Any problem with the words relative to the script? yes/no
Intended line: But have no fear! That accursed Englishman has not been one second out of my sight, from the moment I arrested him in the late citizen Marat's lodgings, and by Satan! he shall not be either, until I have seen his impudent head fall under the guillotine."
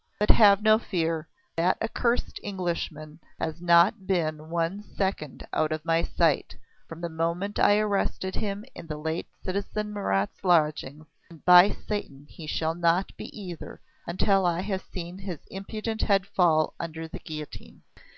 no